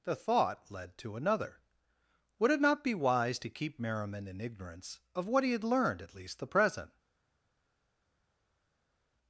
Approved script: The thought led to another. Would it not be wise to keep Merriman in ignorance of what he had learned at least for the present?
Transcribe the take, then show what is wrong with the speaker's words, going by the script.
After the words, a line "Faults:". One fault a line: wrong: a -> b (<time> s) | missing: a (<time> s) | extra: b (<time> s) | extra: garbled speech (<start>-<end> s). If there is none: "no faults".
The thought led to another. Would it not be wise to keep Merriman in ignorance of what he had learned at least the present?
Faults:
missing: for (6.4 s)